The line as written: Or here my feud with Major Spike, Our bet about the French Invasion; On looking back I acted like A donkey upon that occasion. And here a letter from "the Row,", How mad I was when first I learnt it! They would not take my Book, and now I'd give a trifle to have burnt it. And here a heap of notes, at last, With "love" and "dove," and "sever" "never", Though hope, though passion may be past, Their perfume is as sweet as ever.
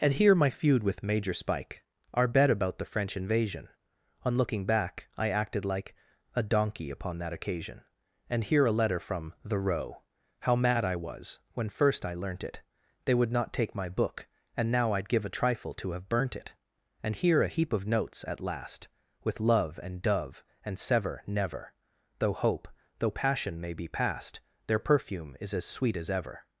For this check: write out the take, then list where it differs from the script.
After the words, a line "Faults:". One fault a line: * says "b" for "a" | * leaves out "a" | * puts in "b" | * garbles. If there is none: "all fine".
And here my feud with Major Spike, Our bet about the French Invasion; On looking back I acted like A donkey upon that occasion. And here a letter from "the Row,", How mad I was when first I learnt it! They would not take my Book, and now I'd give a trifle to have burnt it. And here a heap of notes, at last, With "love" and "dove," and "sever" "never", Though hope, though passion may be past, Their perfume is as sweet as ever.
Faults:
* says "And" for "Or"